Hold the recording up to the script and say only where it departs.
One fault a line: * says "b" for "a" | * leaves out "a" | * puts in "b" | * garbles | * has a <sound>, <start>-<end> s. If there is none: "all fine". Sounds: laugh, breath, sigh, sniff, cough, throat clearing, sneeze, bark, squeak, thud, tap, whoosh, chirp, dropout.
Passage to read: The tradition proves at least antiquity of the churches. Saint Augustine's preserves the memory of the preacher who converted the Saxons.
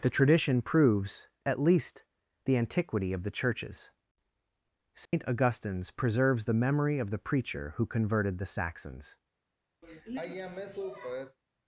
* puts in "the"
* has a dropout, 5.1-5.1 s
* has a sigh, 9.8-11.4 s